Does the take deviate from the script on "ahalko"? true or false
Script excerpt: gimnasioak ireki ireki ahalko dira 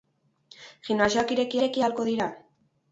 false